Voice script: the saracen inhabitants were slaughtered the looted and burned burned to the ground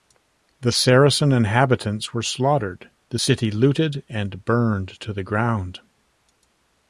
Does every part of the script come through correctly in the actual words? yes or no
no